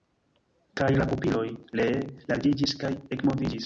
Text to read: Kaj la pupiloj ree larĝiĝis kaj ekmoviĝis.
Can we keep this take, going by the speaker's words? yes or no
yes